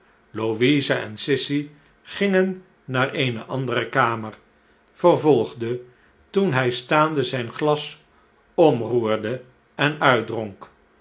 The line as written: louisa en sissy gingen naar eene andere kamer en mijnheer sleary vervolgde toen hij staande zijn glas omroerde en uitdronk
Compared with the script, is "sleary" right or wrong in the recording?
wrong